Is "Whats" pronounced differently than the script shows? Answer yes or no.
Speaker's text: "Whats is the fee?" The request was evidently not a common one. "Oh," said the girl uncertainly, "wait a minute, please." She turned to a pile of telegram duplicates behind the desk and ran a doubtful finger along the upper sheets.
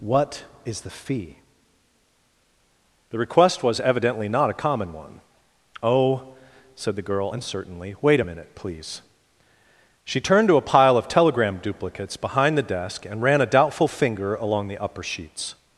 yes